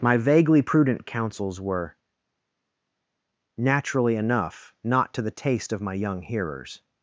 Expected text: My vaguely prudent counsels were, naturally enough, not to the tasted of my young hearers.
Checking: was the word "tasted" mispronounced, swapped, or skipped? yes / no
yes